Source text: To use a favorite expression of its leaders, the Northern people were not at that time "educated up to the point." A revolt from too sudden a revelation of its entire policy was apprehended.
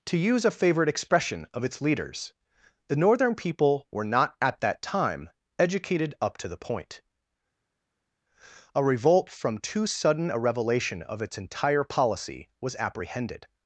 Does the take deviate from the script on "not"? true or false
false